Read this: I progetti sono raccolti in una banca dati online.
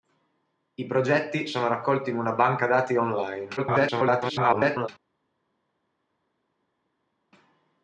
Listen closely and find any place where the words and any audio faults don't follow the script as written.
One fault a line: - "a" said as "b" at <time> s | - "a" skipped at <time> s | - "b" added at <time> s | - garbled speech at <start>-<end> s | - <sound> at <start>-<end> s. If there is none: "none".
- garbled speech at 3.6-4.9 s